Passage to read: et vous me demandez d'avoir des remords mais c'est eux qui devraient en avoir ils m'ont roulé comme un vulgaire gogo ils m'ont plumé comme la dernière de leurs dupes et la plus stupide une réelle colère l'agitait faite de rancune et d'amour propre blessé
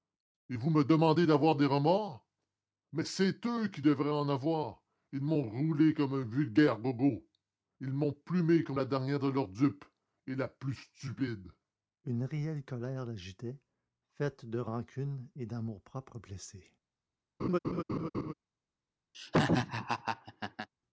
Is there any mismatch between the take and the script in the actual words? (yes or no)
no